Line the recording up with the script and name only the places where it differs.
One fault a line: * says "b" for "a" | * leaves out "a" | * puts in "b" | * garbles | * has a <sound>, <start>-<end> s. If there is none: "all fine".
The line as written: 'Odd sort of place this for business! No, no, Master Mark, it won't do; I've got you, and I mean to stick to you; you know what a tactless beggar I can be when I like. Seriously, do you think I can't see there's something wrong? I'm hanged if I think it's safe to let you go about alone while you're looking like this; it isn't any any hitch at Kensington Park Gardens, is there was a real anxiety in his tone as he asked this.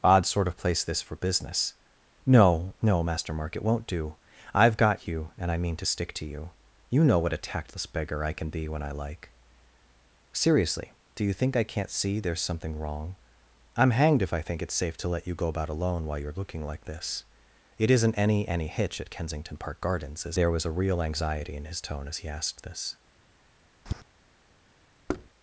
* has a tap, 23.9-24.0 s
* has a thud, 25.1-25.3 s